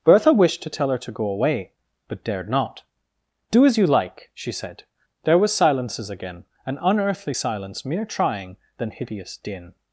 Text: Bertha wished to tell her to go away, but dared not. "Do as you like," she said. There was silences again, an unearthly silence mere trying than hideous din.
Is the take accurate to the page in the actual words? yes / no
yes